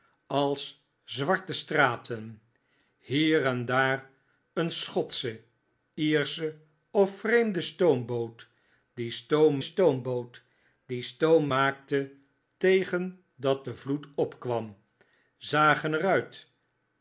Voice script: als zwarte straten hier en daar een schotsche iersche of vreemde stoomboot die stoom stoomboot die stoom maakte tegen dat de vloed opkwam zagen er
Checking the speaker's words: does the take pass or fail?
pass